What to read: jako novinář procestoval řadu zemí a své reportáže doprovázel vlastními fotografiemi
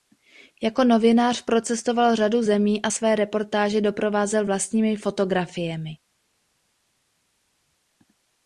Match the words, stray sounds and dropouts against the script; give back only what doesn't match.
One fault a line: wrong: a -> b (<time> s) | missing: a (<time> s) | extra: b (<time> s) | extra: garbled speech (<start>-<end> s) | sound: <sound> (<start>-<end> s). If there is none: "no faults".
no faults